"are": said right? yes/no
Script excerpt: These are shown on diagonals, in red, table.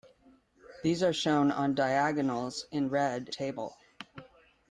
yes